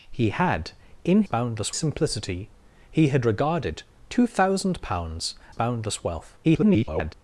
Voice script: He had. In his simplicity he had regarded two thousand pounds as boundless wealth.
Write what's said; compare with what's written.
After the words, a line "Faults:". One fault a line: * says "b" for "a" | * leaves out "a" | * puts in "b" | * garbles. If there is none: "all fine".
He had. In boundless simplicity he had regarded two thousand pounds boundless wealth. [garbled]
Faults:
* says "boundless" for "his"
* leaves out "as"
* garbles